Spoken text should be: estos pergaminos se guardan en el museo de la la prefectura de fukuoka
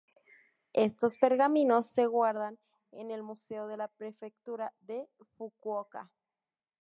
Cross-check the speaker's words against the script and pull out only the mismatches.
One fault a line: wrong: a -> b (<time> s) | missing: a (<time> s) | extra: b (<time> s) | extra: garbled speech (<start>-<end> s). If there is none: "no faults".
missing: la (3.9 s)